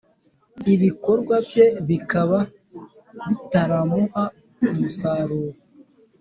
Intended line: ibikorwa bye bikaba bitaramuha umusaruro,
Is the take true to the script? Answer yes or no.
yes